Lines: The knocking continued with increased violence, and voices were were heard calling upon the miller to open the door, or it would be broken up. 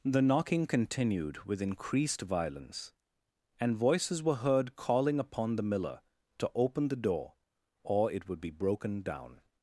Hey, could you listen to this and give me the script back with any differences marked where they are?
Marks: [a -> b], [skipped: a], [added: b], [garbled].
The knocking continued with increased violence, and voices were [skipped: were] heard calling upon the miller to open the door, or it would be broken [up. -> down]